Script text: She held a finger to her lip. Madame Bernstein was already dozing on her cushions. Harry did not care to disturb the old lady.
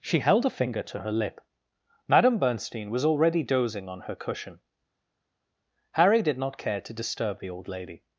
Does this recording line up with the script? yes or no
no